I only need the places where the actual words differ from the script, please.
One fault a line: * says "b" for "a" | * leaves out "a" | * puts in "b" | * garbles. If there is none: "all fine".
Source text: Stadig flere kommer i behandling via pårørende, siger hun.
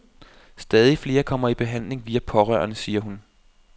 all fine